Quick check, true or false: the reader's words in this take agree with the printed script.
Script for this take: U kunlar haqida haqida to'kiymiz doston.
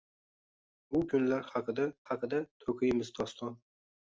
true